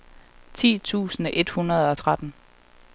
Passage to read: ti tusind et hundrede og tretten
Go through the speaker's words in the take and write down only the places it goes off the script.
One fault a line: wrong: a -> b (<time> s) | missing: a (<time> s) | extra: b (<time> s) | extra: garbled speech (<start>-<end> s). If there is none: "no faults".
no faults